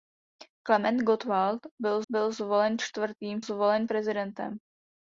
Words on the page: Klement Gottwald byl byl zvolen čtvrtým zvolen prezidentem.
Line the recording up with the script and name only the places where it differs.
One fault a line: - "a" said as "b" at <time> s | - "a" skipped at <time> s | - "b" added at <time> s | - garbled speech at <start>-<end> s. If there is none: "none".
none